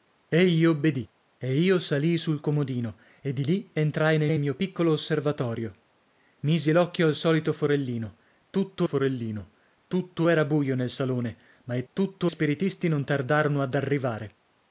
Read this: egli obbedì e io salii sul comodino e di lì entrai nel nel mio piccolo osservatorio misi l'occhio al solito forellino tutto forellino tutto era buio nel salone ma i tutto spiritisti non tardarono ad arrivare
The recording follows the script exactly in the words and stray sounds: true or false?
true